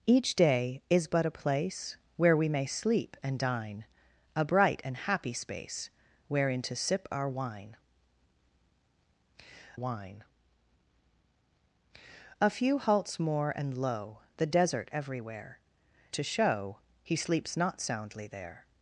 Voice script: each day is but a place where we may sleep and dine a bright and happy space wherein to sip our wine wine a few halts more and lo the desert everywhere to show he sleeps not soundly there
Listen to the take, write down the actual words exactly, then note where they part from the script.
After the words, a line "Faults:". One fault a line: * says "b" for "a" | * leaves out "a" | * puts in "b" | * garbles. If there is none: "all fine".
each day is but a place where we may sleep and dine a bright and happy space wherein to sip our wine wine a few halts more and lo the desert everywhere to show he sleeps not soundly there
Faults:
all fine